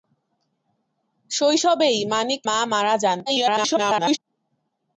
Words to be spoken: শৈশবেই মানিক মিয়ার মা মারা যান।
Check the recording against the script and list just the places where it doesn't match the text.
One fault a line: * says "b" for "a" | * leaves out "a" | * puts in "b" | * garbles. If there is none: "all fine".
* leaves out "মিয়ার"
* garbles